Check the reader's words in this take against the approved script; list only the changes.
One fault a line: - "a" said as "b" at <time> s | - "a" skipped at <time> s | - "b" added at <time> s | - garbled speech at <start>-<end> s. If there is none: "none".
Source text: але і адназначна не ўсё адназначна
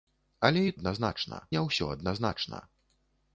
none